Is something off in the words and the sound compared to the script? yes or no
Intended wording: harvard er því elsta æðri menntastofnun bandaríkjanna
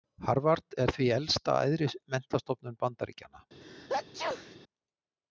yes